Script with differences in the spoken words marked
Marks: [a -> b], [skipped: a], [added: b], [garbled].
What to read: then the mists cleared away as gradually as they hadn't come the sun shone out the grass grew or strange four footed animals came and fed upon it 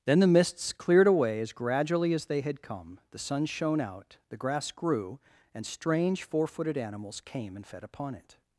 then the mists cleared away as gradually as they [hadn't -> had] come the sun shone out the grass grew [or -> and] strange four footed animals came and fed upon it